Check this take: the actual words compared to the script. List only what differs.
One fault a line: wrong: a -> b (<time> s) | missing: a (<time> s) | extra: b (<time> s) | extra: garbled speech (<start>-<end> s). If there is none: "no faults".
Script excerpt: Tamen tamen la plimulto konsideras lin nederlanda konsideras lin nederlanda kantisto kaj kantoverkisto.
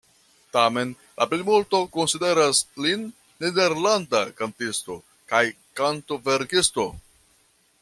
missing: tamen (0.9 s)
missing: konsideras lin nederlanda (4.2 s)